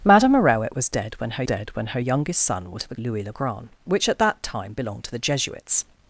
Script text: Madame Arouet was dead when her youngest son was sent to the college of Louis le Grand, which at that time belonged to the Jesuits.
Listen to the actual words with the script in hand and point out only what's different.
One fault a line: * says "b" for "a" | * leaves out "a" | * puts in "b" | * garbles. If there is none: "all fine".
* puts in "dead when her"
* leaves out "sent"
* leaves out "college of"